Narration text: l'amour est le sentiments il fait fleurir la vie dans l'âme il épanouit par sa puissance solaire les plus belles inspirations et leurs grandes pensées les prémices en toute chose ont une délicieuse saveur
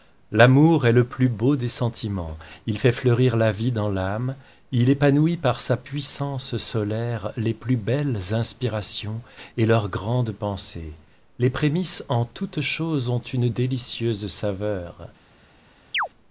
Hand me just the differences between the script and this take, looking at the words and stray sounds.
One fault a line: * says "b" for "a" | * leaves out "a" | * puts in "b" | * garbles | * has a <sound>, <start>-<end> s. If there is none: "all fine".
* puts in "plus beau des"
* has a chirp, 15.9-16.1 s